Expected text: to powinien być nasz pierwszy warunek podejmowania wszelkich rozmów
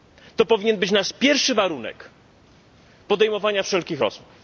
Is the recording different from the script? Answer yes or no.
no